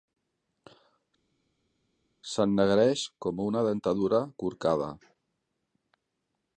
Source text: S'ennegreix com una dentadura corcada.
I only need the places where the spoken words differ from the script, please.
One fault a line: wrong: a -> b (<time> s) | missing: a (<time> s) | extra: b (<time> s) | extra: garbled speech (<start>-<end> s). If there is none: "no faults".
no faults